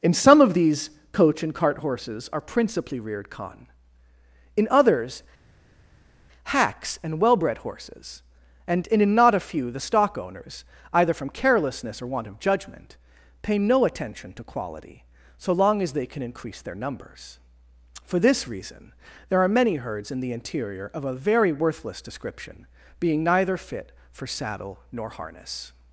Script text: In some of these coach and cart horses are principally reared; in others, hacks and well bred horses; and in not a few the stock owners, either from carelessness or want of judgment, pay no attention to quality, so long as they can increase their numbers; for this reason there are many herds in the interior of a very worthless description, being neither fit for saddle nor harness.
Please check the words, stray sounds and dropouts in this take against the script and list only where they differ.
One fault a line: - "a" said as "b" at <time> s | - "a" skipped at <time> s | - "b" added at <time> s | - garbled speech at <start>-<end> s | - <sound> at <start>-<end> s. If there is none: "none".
- "khan" added at 3.3 s